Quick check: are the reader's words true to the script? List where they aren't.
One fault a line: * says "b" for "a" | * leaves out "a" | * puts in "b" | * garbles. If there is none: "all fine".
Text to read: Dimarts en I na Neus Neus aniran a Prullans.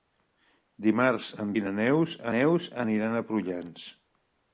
all fine